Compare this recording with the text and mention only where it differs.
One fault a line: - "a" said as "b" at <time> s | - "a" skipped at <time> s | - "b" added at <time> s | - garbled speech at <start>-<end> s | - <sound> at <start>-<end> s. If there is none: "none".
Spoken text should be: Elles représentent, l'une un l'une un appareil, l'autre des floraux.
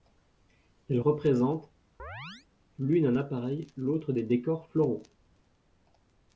- chirp at 2.0-2.5 s
- "l'une un" skipped at 3.2 s
- "décors" added at 4.2 s